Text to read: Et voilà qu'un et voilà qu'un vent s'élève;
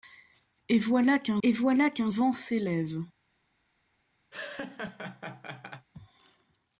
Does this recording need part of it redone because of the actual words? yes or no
no